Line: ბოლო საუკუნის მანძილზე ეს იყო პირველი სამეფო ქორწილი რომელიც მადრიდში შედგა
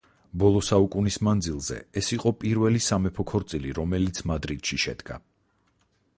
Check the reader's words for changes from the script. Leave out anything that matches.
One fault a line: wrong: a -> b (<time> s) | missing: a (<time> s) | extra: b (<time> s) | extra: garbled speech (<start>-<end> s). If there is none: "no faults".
no faults